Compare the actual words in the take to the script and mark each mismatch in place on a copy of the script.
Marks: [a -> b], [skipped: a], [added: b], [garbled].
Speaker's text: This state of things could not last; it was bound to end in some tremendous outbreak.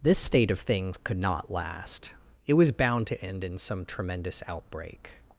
This state of things could not last; it was bound to end in some tremendous outbreak.